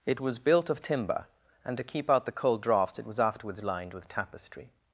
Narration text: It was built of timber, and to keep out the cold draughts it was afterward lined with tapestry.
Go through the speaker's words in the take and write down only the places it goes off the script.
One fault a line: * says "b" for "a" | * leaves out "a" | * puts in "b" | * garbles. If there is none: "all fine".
* says "afterwards" for "afterward"